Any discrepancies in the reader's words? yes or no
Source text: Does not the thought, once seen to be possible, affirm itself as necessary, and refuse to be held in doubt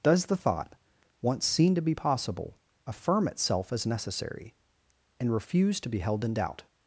yes